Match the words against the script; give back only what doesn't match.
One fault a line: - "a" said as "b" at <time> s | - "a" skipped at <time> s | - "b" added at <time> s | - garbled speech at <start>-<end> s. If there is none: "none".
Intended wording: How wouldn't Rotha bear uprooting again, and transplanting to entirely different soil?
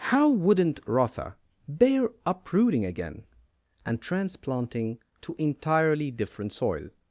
none